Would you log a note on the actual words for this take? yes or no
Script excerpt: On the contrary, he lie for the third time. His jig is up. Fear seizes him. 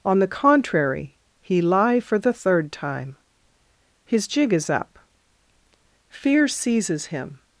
no